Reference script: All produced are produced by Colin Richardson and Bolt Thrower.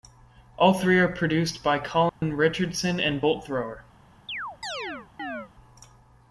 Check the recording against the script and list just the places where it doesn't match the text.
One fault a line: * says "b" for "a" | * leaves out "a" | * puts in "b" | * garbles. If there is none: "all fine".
* says "three" for "produced"